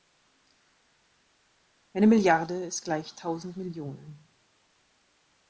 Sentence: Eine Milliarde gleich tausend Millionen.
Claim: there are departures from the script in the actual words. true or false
true